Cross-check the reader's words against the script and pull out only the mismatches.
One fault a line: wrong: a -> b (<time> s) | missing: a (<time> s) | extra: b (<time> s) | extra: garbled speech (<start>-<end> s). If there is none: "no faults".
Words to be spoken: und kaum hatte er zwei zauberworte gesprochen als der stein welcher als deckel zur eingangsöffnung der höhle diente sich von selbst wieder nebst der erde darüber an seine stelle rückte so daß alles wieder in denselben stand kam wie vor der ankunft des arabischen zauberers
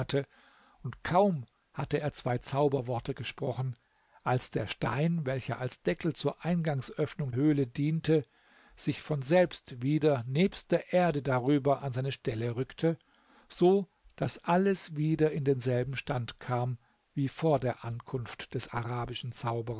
missing: der (7.3 s)